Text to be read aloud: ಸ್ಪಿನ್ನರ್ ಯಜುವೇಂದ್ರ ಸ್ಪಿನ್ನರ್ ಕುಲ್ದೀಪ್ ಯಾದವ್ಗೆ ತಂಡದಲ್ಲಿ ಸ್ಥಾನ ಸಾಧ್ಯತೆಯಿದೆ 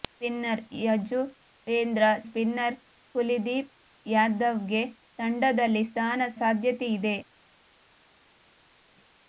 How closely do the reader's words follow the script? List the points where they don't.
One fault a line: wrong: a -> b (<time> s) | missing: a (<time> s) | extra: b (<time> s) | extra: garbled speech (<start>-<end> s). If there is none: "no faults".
no faults